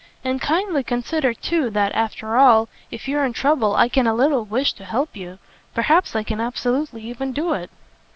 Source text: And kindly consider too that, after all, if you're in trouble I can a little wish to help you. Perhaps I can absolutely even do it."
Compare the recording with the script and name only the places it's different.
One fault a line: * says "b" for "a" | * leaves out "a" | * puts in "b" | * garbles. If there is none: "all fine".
all fine